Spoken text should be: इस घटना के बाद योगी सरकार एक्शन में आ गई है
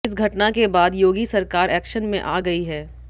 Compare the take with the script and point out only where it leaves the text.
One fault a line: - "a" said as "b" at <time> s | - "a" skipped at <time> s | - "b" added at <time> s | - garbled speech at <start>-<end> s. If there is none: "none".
none